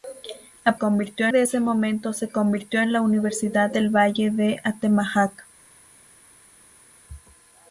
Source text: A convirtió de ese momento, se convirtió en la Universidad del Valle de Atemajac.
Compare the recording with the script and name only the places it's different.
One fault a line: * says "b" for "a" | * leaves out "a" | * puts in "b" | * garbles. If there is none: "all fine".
all fine